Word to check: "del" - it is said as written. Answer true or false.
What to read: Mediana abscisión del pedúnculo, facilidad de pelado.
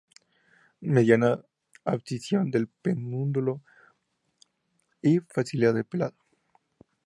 true